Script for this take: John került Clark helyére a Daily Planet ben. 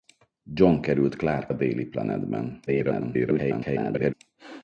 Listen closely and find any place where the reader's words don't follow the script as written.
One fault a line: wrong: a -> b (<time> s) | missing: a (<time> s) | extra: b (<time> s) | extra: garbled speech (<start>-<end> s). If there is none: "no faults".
missing: helyére (1.5 s)
extra: garbled speech (2.7-4.1 s)